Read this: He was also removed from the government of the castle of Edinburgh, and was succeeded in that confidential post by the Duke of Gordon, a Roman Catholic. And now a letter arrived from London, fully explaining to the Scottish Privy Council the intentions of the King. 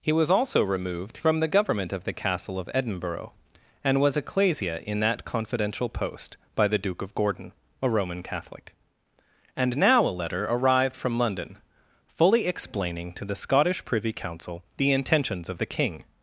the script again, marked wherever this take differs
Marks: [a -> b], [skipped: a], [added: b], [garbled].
He was also removed from the government of the castle of Edinburgh, and was [succeeded -> ecclesia] in that confidential post by the Duke of Gordon, a Roman Catholic. And now a letter arrived from London, fully explaining to the Scottish Privy Council the intentions of the King.